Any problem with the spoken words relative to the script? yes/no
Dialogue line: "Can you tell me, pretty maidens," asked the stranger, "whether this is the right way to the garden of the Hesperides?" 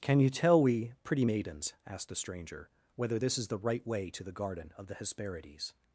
yes